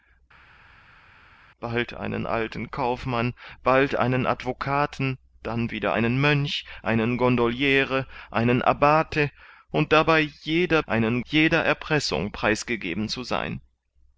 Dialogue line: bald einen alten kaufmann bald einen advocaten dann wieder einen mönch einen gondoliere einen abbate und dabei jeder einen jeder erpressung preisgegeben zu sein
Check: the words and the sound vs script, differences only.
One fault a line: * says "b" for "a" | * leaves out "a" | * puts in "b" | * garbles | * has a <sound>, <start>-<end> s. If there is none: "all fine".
all fine